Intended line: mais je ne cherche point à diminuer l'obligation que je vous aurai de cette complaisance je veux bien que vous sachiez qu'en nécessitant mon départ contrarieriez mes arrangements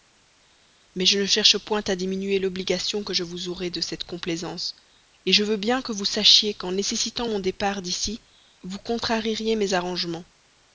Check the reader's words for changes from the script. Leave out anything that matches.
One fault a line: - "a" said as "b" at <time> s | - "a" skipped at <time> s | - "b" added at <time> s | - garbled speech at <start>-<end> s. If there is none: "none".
- "d'ici vous" added at 7.8 s